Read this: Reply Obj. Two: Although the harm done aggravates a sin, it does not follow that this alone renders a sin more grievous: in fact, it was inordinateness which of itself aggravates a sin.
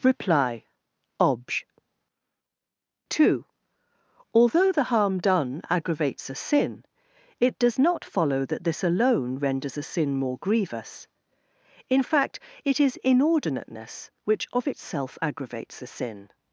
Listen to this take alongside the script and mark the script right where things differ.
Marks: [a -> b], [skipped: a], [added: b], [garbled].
Reply Obj. Two: Although the harm done aggravates a sin, it does not follow that this alone renders a sin more grievous: in fact, it [was -> is] inordinateness which of itself aggravates a sin.